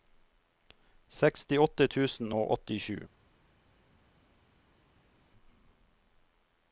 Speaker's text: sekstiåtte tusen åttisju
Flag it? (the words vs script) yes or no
yes